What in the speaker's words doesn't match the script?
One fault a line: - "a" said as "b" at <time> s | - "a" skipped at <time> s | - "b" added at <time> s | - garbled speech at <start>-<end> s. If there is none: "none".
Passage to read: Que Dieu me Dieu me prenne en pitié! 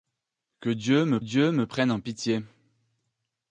none